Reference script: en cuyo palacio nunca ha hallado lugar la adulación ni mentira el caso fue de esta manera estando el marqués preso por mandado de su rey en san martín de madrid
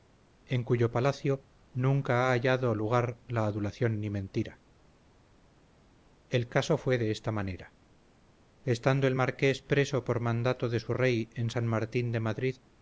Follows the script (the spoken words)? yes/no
yes